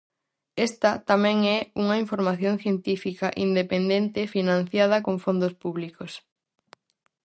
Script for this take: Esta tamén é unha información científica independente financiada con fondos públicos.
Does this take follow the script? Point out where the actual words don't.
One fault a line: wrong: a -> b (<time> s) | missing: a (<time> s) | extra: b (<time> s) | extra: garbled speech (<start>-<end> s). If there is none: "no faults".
no faults